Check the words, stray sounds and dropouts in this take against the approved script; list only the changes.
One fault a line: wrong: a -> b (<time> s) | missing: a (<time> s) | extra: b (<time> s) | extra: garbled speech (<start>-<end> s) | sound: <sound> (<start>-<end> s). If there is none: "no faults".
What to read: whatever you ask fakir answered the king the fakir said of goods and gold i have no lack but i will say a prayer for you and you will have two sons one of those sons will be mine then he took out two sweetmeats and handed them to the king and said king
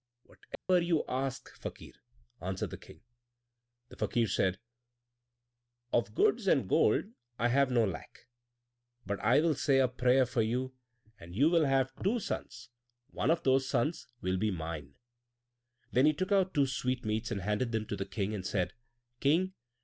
sound: dropout (0.6-0.7 s)